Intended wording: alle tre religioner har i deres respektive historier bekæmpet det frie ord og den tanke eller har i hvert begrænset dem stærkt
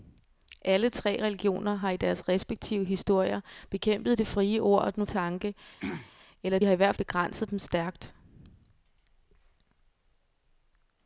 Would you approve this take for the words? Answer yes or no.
yes